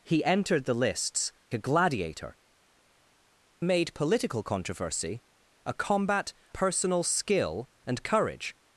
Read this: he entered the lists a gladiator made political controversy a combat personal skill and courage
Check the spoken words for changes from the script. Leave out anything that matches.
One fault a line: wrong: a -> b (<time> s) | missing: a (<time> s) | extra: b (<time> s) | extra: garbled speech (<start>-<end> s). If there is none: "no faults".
no faults